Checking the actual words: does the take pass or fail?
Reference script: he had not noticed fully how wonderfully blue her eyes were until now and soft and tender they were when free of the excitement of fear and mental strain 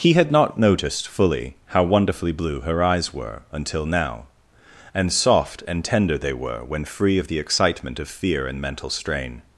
pass